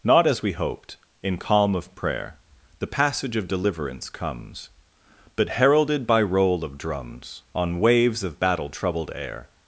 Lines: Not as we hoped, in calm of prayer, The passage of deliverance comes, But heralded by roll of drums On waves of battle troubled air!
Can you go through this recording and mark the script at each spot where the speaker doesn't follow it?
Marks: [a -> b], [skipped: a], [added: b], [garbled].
Not as we hoped, in calm of prayer, The passage of deliverance comes, But heralded by roll of drums On waves of battle troubled air!